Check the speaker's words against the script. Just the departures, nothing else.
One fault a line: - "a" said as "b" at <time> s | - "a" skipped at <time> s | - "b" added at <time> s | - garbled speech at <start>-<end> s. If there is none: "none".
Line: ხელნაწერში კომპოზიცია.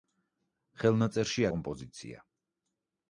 none